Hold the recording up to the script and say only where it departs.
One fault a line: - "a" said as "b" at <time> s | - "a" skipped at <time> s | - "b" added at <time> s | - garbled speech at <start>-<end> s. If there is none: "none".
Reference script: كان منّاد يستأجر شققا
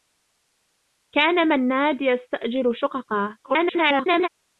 - garbled speech at 3.4-4.3 s